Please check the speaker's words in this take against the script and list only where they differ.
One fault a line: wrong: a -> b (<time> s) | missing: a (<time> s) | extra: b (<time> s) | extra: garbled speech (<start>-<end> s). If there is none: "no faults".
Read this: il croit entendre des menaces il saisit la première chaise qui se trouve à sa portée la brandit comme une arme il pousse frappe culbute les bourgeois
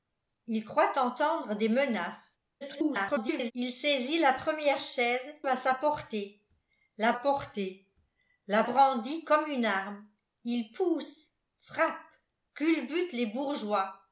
extra: garbled speech (2.6-3.5 s)
wrong: qui se trouve à sa -> à sa portée la (5.5 s)